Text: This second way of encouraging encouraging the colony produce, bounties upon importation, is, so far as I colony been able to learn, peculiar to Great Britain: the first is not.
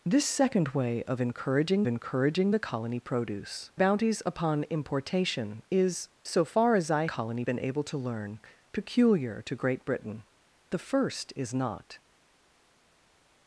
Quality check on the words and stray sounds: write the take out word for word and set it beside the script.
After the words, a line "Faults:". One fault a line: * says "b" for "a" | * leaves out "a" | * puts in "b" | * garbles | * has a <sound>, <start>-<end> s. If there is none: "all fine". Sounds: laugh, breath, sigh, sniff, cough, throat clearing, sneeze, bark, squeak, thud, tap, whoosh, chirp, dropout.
This second way of encouraging encouraging the colony produce, bounties upon importation, is, so far as I colony been able to learn, peculiar to Great Britain: the first is not.
Faults:
all fine